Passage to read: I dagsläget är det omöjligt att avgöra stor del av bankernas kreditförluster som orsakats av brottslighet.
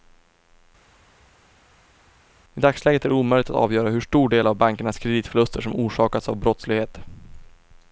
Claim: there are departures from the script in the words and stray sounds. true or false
true